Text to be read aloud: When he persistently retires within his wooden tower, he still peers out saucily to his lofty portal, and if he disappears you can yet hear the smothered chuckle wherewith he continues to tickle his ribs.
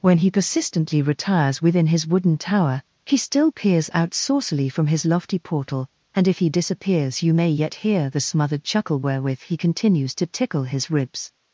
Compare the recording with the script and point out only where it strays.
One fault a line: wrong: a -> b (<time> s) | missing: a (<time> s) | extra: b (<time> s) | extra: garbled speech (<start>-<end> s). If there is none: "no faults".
wrong: to -> from (4.7 s)
wrong: can -> may (7.3 s)